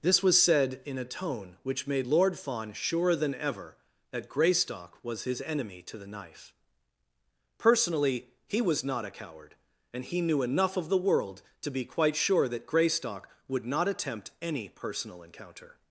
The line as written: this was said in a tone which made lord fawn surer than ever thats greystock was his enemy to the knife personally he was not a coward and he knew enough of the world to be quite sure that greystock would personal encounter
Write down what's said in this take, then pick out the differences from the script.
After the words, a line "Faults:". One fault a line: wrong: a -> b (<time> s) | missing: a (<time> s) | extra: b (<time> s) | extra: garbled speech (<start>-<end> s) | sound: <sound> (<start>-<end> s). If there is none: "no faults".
this was said in a tone which made lord fawn surer than ever that greystock was his enemy to the knife personally he was not a coward and he knew enough of the world to be quite sure that greystock would not attempt any personal encounter
Faults:
wrong: thats -> that (4.1 s)
extra: not attempt any (13.6 s)